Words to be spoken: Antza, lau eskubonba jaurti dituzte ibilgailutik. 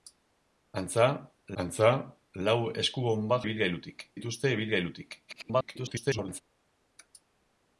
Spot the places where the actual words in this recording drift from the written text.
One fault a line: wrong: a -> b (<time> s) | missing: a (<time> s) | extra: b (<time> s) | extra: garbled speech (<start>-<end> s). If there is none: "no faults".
extra: antza (1.6 s)
wrong: jaurti -> ibilgailutik (3.4 s)
extra: garbled speech (5.3-6.4 s)